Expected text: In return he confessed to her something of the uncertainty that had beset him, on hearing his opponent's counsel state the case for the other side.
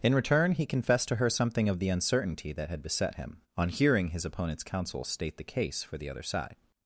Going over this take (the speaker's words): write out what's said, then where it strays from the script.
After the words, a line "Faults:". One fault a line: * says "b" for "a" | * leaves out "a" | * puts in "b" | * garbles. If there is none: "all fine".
In return he confessed to her something of the uncertainty that had beset him, on hearing his opponent's counsel state the case for the other side.
Faults:
all fine